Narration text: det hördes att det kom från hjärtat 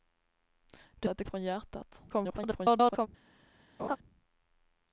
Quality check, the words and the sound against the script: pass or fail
fail